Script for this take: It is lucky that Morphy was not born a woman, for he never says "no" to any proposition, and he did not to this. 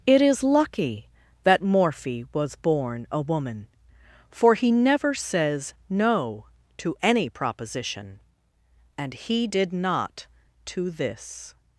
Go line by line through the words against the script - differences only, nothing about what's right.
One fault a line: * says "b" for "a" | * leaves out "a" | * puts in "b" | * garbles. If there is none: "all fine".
* leaves out "not"